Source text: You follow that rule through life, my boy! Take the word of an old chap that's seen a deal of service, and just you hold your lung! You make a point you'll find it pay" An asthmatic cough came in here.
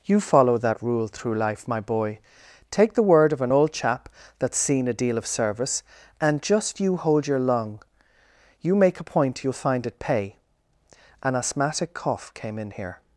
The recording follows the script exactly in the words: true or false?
true